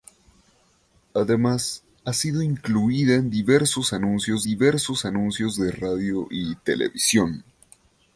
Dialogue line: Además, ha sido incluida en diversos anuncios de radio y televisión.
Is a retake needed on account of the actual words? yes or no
yes